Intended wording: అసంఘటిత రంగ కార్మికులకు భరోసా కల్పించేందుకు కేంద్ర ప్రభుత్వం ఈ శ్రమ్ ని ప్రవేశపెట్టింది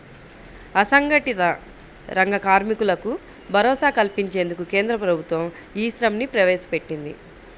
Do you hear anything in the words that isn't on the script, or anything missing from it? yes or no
no